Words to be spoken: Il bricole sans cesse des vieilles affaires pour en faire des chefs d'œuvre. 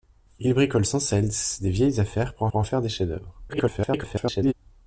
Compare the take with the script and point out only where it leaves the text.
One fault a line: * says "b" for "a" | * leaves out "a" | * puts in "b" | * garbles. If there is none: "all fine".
* puts in "pour"
* garbles